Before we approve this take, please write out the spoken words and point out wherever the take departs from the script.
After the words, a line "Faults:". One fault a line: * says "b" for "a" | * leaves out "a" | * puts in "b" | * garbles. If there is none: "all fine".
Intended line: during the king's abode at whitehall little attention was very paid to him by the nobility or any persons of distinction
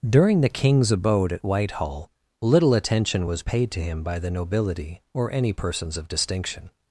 during the king's abode at whitehall little attention was paid to him by the nobility or any persons of distinction
Faults:
* leaves out "very"